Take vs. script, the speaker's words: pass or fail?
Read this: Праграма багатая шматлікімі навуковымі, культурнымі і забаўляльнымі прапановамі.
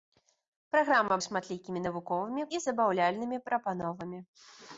fail